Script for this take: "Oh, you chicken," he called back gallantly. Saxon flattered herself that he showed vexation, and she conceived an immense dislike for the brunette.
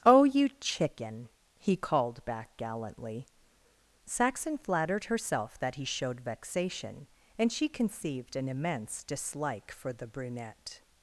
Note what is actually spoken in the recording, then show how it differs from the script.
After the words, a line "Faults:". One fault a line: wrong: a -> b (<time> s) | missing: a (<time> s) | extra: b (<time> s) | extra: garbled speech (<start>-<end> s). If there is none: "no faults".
"Oh, you chicken," he called back gallantly. Saxon flattered herself that he showed vexation, and she conceived an immense dislike for the brunette.
Faults:
no faults